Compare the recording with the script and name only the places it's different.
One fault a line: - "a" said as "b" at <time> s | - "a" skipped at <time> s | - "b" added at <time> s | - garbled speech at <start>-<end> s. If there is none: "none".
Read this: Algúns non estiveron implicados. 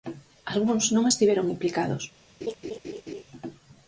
none